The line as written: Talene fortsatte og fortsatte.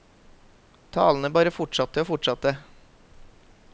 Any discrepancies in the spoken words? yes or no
yes